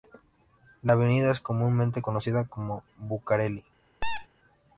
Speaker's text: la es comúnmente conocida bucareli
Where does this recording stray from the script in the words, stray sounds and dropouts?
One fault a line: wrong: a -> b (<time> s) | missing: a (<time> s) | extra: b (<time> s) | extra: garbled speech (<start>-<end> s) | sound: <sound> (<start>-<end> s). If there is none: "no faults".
extra: avenida (0.9 s)
extra: como (2.5 s)
sound: squeak (4.0-4.3 s)